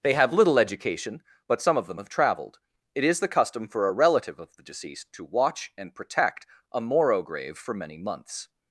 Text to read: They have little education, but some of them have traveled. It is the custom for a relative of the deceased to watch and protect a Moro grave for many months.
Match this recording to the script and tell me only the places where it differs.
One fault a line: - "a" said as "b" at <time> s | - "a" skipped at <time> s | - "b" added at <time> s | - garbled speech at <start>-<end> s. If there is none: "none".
none